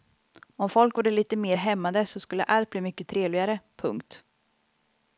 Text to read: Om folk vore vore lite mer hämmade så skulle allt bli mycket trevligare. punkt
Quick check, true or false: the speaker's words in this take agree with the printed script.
false